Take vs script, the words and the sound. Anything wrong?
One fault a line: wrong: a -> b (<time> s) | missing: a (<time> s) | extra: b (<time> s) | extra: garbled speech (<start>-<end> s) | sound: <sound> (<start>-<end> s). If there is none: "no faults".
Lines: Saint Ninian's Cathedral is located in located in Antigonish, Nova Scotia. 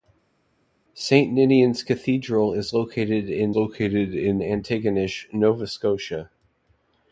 no faults